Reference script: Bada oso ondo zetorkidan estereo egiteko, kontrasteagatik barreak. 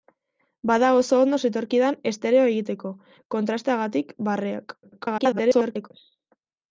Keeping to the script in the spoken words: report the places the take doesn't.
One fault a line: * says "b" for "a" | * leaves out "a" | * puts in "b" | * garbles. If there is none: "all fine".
* garbles